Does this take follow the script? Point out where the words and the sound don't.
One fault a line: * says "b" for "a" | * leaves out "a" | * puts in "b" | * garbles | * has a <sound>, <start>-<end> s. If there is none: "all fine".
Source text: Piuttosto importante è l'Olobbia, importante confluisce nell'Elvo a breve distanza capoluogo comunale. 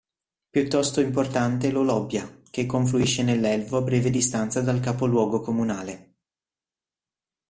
* says "che" for "importante"
* puts in "dal"